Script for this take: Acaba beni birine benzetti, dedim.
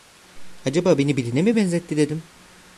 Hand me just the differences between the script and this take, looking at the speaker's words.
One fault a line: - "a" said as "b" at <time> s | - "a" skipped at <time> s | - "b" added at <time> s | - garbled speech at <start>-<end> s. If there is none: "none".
- "mi" added at 1.4 s